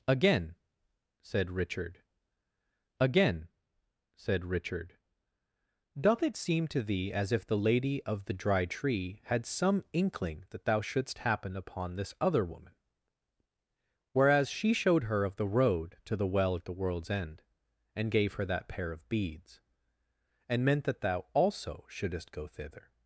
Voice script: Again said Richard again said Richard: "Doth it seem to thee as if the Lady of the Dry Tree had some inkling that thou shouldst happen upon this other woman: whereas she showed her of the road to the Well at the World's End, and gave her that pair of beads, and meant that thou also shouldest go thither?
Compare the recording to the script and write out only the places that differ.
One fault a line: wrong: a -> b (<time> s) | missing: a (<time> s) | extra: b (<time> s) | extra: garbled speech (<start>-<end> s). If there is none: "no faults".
no faults